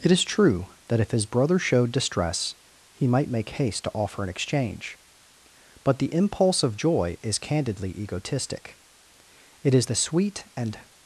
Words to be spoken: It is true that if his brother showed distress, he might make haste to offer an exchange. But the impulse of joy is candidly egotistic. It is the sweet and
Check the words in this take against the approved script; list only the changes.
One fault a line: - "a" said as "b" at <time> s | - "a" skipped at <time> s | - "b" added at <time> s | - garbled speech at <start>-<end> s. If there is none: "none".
none